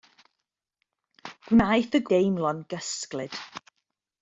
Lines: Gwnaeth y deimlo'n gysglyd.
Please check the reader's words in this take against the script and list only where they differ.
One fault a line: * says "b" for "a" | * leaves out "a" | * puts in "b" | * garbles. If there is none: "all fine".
all fine